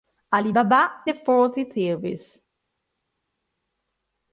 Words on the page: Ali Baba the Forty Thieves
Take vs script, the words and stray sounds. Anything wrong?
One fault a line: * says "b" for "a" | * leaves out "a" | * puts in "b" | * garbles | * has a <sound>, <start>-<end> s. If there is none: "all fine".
all fine